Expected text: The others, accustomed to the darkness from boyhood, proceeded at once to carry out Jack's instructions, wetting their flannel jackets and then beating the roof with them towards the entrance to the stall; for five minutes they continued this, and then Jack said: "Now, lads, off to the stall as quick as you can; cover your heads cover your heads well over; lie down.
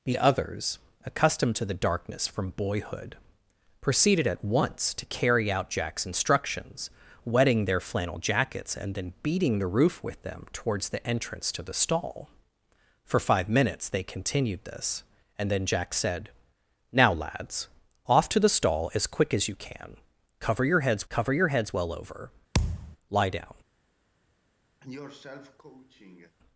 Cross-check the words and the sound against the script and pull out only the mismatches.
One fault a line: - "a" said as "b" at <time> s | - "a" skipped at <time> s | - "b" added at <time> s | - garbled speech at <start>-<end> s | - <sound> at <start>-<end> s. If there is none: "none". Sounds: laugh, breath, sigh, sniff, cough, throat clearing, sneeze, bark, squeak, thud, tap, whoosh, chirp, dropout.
- thud at 22.5-23.0 s
- cough at 24.8-26.4 s